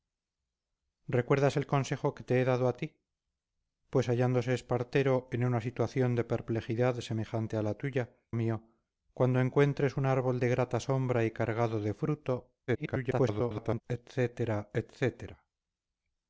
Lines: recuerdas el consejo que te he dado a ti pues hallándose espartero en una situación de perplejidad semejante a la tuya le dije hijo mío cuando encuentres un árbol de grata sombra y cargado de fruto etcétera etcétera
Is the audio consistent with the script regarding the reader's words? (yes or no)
no